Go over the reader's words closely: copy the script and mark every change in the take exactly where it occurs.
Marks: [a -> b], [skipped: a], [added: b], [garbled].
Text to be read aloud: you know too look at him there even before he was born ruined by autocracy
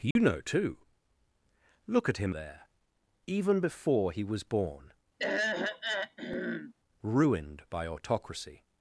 you know too look at him there even before he was born ruined by autocracy